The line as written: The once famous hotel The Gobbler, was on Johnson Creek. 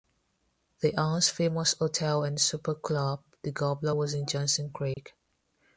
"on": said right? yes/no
no